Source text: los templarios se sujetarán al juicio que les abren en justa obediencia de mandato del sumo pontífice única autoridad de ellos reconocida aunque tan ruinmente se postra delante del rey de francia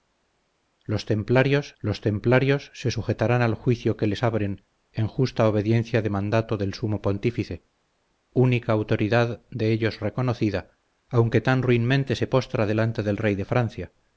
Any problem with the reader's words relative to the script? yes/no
yes